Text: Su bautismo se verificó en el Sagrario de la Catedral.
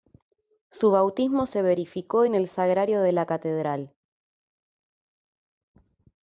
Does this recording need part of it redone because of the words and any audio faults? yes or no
no